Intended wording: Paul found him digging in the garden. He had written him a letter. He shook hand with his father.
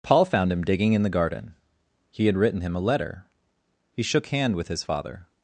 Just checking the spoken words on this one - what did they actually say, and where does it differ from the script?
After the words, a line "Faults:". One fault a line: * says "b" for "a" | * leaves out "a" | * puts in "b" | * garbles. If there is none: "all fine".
Paul found him digging in the garden. He had written him a letter. He shook hand with his father.
Faults:
all fine